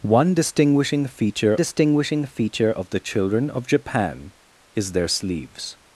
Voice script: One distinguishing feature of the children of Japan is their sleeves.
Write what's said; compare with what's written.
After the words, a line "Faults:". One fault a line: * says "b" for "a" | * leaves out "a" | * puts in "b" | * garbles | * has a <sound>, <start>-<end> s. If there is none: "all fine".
One distinguishing feature distinguishing feature of the children of Japan is their sleeves.
Faults:
* puts in "distinguishing feature"